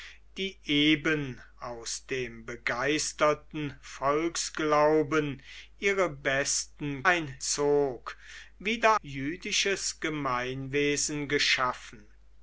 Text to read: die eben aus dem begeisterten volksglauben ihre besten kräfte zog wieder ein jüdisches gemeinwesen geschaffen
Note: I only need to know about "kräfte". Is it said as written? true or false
false